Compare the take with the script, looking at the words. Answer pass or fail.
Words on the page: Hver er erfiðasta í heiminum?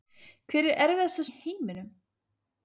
pass